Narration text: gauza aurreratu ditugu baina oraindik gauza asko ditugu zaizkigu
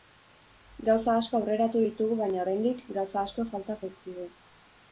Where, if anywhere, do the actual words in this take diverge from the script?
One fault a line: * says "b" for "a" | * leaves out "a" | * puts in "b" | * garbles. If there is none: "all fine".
* puts in "asko"
* says "falta" for "ditugu"